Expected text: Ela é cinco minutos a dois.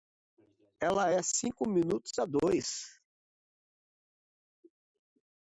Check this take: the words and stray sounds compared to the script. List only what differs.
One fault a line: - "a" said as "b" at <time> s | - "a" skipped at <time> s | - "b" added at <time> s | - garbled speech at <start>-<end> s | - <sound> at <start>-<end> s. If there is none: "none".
none